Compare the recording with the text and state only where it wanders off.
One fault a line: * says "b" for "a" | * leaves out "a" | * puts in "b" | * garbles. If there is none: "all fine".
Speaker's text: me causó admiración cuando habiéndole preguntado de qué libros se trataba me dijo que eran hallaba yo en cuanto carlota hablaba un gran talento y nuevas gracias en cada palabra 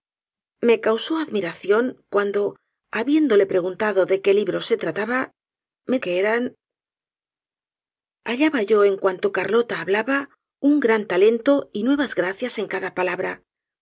* leaves out "dijo"